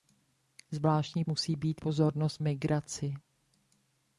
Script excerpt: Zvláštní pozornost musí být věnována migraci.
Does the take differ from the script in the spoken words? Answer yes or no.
yes